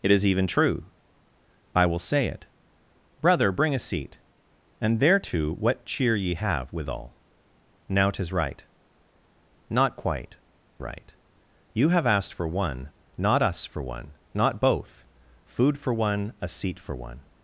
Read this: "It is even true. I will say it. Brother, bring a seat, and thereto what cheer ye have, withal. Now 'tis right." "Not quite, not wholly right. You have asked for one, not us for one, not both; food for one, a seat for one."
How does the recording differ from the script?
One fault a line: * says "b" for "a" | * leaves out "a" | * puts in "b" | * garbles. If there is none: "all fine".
* leaves out "not wholly"